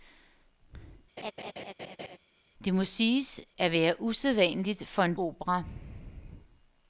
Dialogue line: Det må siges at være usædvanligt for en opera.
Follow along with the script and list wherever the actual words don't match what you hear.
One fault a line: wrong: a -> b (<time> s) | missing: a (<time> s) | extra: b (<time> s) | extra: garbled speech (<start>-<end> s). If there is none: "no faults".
no faults